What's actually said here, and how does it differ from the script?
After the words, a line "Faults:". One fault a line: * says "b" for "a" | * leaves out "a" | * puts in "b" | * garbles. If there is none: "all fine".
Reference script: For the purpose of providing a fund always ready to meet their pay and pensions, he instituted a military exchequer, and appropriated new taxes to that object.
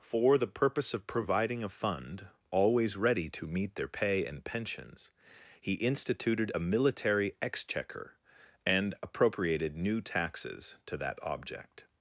For the purpose of providing a fund always ready to meet their pay and pensions, he instituted a military exchequer, and appropriated new taxes to that object.
Faults:
all fine